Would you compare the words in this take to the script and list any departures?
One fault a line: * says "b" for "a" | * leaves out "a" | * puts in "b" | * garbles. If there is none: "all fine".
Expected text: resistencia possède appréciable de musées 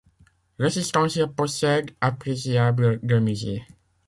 all fine